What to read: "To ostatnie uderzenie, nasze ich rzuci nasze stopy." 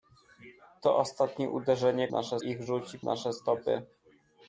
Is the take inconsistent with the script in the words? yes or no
no